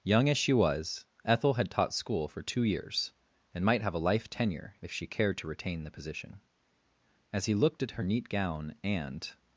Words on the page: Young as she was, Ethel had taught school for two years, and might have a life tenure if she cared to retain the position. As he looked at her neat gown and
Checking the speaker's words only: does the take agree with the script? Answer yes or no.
yes